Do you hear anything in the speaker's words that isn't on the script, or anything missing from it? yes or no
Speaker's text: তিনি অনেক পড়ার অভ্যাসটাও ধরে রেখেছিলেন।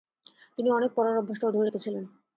no